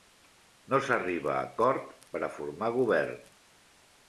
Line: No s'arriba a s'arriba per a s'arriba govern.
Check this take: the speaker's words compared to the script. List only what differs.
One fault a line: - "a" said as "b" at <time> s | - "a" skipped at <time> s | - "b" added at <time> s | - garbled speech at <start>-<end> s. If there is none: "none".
- "s'arriba" said as "acord" at 1.5 s
- "s'arriba" said as "formar" at 2.4 s